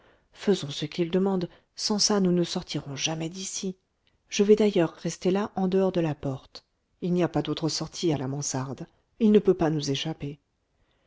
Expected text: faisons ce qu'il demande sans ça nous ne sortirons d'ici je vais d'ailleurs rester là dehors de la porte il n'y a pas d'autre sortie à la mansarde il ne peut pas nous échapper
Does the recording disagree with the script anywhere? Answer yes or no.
yes